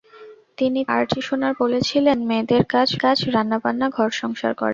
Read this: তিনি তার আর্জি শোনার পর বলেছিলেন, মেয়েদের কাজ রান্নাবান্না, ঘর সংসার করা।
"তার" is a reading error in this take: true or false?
true